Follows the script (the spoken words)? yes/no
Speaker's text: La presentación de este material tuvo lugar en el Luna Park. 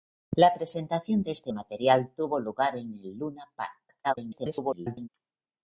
no